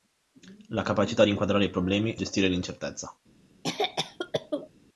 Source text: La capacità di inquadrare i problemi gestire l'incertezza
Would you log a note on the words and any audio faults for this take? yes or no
yes